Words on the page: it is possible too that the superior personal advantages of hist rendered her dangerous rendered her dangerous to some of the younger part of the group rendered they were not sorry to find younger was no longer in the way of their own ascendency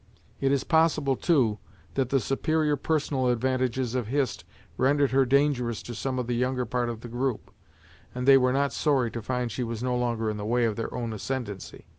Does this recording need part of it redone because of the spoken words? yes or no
yes